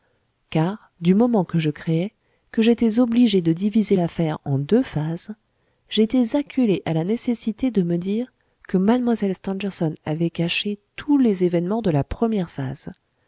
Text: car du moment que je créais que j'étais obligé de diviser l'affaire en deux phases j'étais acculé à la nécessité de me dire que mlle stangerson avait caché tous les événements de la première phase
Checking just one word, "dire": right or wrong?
right